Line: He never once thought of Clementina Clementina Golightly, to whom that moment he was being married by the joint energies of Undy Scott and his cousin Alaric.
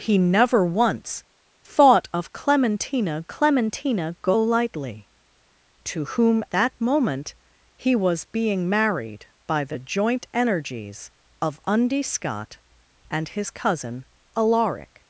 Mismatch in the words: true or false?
false